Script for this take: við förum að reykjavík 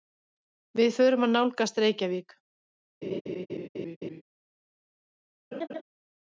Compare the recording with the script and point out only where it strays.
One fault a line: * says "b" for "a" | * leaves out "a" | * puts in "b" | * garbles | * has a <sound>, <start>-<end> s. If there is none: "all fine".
* puts in "nálgast"
* has a laugh, 3.0-4.2 s
* has a laugh, 5.5-5.8 s